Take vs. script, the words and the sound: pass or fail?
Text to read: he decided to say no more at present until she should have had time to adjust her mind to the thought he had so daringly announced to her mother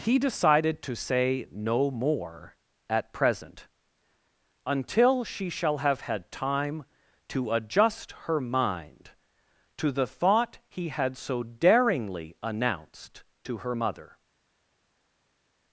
fail